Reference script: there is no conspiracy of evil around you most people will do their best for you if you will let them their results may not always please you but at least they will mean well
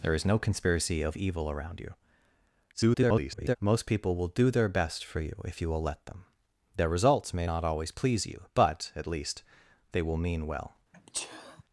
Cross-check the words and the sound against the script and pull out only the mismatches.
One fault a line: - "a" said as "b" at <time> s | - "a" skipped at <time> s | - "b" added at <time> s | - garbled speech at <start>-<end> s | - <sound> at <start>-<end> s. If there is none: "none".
- garbled speech at 2.7-3.6 s
- sneeze at 10.9-11.6 s